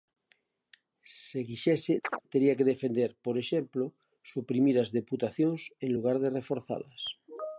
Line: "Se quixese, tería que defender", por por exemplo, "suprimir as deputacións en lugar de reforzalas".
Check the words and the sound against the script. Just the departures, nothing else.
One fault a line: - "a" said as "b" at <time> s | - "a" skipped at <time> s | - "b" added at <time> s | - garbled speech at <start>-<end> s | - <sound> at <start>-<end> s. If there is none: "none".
- chirp at 2.0-2.2 s
- "por" skipped at 3.3 s